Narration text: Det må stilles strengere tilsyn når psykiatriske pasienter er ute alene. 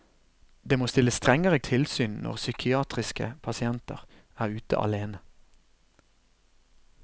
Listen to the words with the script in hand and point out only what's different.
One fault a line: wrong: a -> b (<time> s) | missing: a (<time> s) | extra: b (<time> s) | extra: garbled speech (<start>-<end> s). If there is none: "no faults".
no faults